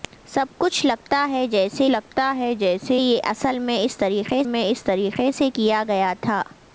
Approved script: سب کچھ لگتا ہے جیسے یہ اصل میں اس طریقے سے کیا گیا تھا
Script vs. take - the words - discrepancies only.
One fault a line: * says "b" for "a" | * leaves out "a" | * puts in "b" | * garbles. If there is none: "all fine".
* puts in "لگتا ہے جیسے"
* puts in "میں اس طریقے"